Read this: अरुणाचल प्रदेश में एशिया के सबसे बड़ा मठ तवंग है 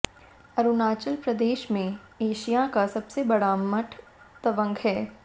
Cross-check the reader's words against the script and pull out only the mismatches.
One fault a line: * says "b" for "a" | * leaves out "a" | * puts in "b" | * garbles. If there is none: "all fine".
* says "का" for "के"